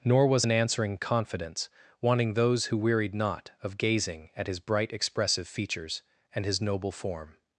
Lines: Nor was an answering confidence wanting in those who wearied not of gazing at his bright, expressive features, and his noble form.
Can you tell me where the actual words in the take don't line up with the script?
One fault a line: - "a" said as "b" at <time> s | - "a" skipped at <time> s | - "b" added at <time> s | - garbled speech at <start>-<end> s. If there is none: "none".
- "in" skipped at 2.3 s